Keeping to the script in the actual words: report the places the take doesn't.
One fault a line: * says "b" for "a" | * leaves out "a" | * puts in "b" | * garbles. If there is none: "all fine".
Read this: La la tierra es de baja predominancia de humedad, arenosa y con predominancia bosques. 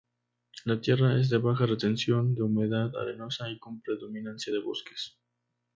* leaves out "la"
* says "retención" for "predominancia"
* puts in "de"